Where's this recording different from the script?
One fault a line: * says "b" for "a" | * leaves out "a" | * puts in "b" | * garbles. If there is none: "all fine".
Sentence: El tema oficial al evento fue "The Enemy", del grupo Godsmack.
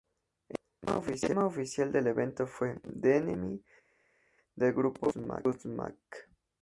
* says "del" for "al"